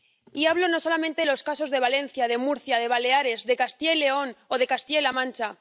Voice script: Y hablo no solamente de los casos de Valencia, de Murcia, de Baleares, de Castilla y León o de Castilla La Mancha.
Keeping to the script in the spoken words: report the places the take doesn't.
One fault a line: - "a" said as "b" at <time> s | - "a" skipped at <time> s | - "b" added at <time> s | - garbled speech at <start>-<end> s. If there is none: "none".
none